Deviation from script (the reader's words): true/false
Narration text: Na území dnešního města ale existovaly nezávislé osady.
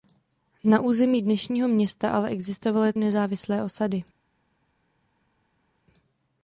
false